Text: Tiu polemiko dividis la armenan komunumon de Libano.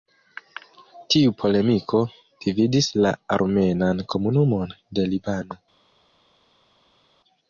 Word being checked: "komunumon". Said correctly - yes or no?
yes